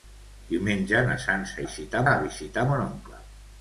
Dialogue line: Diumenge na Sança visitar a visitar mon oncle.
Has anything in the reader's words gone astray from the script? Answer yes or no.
no